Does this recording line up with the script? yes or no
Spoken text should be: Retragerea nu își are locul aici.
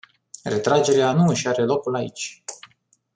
yes